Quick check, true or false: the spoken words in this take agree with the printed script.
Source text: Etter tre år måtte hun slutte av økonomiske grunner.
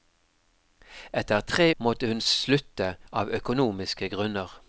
false